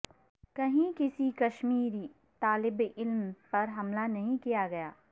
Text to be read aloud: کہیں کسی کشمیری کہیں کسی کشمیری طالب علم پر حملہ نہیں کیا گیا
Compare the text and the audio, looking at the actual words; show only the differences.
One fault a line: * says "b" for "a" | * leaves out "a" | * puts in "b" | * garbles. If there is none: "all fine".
* leaves out "کہیں کسی کشمیری"